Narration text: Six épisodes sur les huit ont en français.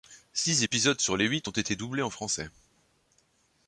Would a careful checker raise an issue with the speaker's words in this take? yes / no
yes